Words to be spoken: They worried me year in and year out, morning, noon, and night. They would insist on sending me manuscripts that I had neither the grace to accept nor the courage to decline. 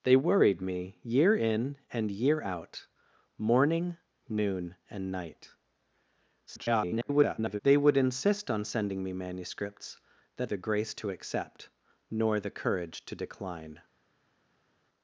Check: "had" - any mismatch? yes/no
yes